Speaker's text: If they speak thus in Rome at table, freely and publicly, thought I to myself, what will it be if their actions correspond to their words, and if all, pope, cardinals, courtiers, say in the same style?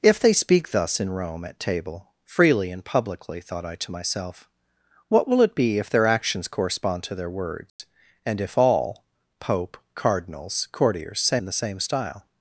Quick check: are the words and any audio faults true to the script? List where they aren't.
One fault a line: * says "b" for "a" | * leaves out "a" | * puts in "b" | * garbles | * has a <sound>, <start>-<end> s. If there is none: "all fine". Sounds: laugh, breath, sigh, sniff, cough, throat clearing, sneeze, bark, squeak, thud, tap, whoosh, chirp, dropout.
* has a dropout, 7.7-7.8 s